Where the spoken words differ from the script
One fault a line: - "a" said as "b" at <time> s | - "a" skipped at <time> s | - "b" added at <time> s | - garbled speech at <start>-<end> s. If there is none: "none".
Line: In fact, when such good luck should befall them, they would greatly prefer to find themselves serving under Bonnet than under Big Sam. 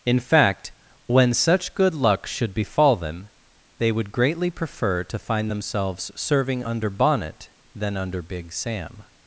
none